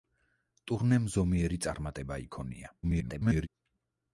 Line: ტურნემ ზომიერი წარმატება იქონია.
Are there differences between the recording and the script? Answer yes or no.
yes